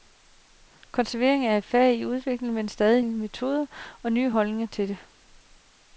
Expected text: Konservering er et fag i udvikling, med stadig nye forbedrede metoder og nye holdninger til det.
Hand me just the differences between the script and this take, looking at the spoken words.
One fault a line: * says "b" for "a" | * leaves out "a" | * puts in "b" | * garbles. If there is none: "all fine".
* leaves out "nye forbedrede"